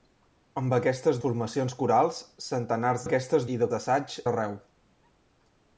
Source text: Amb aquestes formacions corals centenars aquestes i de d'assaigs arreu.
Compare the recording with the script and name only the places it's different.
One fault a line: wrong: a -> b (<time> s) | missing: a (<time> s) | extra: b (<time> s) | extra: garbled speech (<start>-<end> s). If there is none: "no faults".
no faults